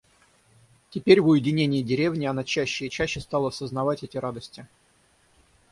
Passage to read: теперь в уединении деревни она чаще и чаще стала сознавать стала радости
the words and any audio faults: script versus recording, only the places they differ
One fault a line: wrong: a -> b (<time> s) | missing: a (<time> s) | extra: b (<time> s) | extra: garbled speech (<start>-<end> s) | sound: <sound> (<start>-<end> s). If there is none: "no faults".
wrong: стала -> эти (4.0 s)